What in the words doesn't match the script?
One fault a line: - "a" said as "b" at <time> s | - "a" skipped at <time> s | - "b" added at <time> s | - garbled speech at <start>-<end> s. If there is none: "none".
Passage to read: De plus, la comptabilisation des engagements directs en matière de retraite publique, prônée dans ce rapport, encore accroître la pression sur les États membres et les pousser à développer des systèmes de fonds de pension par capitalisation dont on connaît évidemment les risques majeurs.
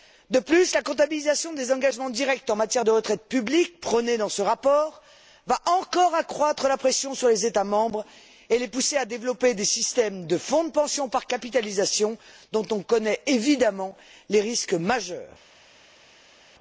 - "va" added at 5.5 s